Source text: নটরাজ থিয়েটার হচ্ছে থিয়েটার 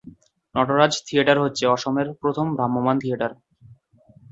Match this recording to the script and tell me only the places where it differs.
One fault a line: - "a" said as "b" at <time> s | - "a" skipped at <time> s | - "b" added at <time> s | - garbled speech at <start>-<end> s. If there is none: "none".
- "অসমের প্রথম ভ্রাম্যমাণ" added at 1.7 s